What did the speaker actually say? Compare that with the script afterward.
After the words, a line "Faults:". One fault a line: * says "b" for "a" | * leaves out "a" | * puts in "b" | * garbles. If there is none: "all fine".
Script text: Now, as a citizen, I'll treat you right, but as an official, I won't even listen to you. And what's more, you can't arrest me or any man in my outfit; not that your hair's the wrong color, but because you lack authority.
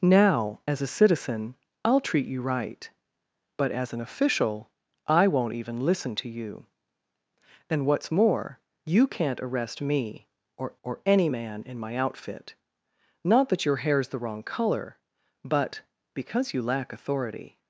Now, as a citizen, I'll treat you right, but as an official, I won't even listen to you. And what's more, you can't arrest me or or any man in my outfit; not that your hair's the wrong color, but because you lack authority.
Faults:
* puts in "or"